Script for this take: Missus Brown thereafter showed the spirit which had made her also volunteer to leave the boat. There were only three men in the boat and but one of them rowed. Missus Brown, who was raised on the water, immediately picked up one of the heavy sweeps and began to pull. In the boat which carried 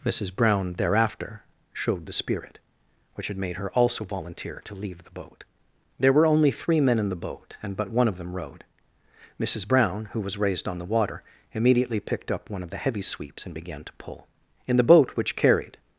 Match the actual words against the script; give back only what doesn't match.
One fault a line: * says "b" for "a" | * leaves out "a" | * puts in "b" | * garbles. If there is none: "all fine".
all fine